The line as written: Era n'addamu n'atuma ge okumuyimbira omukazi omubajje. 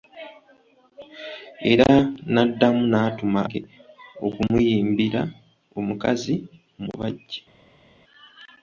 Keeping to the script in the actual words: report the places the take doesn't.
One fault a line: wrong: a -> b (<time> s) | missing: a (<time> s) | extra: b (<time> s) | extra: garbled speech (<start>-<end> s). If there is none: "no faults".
no faults